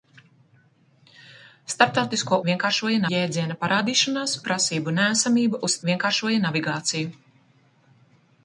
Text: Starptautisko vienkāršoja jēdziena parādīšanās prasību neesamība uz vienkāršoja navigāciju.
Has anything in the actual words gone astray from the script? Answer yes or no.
no